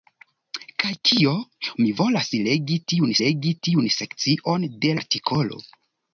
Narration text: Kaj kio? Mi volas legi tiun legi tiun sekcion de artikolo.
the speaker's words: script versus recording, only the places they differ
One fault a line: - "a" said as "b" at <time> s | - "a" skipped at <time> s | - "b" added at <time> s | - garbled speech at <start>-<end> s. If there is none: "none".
none